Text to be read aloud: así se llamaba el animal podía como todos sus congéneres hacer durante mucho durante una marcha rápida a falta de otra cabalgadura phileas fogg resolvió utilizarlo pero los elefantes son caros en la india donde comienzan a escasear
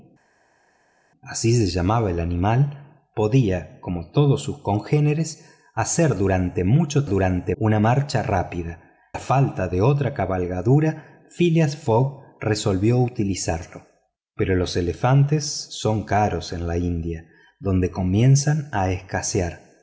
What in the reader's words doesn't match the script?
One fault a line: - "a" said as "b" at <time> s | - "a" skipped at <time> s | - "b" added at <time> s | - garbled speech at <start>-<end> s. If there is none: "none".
none